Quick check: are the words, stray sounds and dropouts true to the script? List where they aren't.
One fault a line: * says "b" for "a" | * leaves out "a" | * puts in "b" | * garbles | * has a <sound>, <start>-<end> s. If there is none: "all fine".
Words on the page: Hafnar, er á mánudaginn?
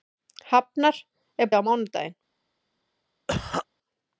* has a cough, 3.3-3.7 s